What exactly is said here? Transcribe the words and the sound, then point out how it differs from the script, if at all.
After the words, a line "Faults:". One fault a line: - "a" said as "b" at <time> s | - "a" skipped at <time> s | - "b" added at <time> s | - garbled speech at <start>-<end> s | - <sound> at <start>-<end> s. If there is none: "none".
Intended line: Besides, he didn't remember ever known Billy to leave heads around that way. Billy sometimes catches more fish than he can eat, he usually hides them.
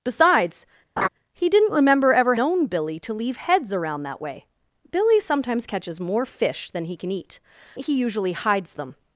Besides, he didn't remember ever known Billy to leave heads around that way. Billy sometimes catches more fish than he can eat, he usually hides them.
Faults:
- laugh at 1.0-1.1 s